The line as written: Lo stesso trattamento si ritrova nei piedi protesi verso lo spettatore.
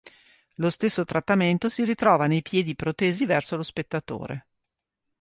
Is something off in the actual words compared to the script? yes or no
no